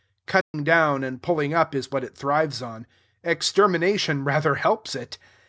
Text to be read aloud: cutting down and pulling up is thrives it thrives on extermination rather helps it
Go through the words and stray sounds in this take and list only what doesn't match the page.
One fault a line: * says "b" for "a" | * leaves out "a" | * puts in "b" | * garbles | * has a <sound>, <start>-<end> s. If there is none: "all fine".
* has a dropout, 0.4-0.5 s
* says "what" for "thrives"